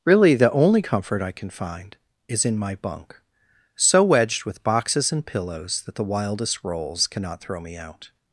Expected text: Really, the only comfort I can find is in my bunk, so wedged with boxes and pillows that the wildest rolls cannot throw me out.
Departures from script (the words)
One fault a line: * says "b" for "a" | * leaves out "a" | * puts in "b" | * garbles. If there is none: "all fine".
all fine